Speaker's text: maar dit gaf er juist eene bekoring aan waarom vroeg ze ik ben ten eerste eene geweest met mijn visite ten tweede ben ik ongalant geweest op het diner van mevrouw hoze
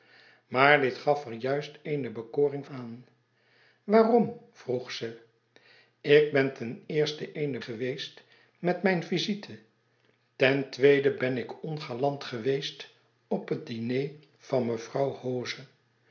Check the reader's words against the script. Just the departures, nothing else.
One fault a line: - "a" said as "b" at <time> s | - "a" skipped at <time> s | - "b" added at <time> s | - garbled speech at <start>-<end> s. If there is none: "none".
none